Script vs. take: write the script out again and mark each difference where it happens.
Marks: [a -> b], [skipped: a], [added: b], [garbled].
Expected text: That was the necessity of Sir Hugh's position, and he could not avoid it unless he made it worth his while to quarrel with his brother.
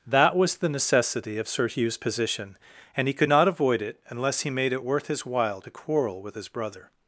That was the necessity of Sir Hugh's position, and he could not avoid it unless he made it worth his while to quarrel with his brother.